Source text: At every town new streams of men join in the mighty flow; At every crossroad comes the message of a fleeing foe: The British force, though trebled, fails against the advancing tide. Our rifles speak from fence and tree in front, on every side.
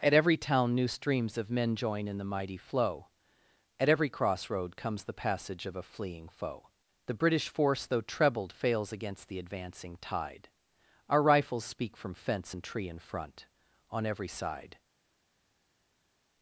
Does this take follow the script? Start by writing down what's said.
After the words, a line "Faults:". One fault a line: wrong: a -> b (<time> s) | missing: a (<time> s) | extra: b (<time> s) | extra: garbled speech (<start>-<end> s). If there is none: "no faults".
At every town new streams of men join in the mighty flow; At every crossroad comes the passage of a fleeing foe: The British force, though trebled, fails against the advancing tide. Our rifles speak from fence and tree in front, on every side.
Faults:
wrong: message -> passage (5.2 s)